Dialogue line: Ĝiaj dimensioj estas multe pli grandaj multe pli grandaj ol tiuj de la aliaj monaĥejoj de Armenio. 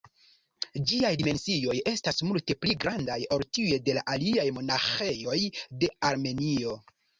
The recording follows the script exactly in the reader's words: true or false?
false